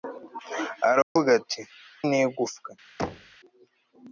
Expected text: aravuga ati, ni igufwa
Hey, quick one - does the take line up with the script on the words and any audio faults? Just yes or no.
no